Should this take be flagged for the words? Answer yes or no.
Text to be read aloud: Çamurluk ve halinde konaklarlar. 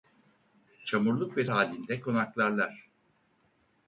no